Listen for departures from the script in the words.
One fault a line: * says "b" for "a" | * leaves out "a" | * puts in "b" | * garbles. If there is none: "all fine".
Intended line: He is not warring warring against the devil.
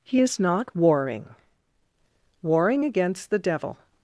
all fine